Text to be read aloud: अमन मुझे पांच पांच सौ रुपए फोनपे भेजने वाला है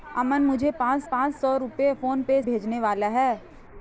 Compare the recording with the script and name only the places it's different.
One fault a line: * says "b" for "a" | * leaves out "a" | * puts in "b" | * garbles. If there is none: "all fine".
all fine